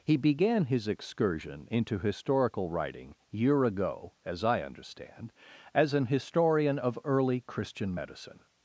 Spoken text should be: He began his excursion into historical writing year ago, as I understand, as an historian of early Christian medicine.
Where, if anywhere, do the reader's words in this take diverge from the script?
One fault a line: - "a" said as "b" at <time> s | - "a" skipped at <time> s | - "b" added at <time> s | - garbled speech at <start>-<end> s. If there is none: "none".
none